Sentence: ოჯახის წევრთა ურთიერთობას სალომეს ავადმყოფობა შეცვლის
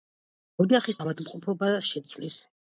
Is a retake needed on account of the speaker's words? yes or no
yes